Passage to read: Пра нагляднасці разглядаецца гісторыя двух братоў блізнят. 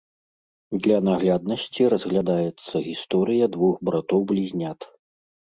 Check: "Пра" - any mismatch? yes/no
yes